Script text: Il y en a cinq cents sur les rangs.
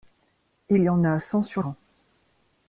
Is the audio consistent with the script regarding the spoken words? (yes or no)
no